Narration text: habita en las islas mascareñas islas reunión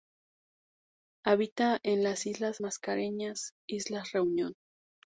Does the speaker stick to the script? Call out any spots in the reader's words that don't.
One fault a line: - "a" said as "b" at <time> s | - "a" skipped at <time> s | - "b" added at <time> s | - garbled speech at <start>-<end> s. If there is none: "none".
none